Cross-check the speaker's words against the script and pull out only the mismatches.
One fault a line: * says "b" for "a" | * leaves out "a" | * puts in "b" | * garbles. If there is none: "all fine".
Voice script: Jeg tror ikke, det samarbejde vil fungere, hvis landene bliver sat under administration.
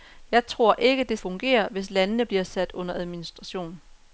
* leaves out "samarbejde vil"